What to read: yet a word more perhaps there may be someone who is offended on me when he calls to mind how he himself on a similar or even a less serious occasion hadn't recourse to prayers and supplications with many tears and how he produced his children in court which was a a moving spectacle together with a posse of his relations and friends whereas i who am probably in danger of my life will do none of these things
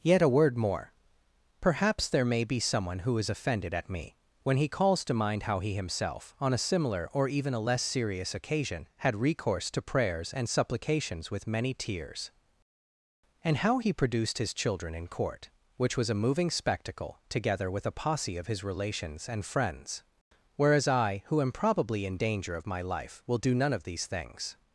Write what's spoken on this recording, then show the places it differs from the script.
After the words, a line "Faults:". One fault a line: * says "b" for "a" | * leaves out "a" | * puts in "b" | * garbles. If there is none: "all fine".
yet a word more perhaps there may be someone who is offended at me when he calls to mind how he himself on a similar or even a less serious occasion had recourse to prayers and supplications with many tears and how he produced his children in court which was a moving spectacle together with a posse of his relations and friends whereas i who am probably in danger of my life will do none of these things
Faults:
* says "at" for "on"
* says "had" for "hadn't"
* leaves out "a"